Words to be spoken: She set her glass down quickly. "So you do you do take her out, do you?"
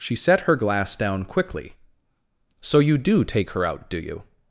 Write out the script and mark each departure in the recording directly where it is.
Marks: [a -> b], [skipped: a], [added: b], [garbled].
She set her glass down quickly. "So you do [skipped: you do] take her out, do you?"